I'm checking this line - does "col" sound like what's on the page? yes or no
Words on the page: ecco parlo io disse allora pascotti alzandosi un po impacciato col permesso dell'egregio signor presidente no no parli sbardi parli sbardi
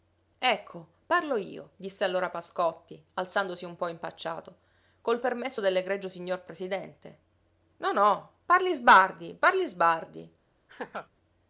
yes